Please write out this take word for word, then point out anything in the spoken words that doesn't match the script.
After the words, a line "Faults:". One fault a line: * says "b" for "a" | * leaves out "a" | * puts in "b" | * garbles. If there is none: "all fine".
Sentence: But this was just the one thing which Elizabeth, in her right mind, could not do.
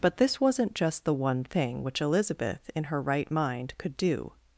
But this wasn't just the one thing which Elizabeth, in her right mind, could do.
Faults:
* says "wasn't" for "was"
* leaves out "not"